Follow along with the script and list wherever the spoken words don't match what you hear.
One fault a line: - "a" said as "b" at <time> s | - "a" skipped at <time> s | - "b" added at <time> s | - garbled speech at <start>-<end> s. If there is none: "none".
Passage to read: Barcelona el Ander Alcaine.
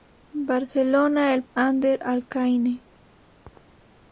none